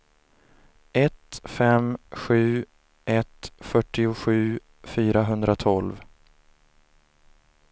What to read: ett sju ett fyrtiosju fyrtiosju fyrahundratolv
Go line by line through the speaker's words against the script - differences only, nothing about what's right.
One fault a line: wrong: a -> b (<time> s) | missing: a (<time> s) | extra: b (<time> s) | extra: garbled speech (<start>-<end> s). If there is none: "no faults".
extra: fem (1.4 s)
missing: fyrtiosju (4.6 s)